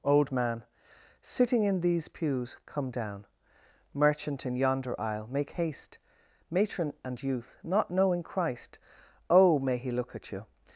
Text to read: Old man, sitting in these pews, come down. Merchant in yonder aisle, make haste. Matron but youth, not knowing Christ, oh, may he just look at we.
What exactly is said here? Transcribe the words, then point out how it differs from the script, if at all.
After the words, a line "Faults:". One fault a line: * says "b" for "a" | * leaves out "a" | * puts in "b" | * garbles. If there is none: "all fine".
Old man, sitting in these pews, come down. Merchant in yonder aisle, make haste. Matron and youth, not knowing Christ, oh, may he look at you.
Faults:
* says "and" for "but"
* leaves out "just"
* says "you" for "we"